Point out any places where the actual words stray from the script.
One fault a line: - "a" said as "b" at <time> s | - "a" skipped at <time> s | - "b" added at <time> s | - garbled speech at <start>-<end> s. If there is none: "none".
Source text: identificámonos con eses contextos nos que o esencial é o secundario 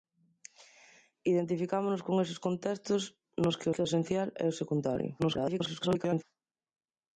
- "que" added at 3.7 s
- garbled speech at 5.2-6.2 s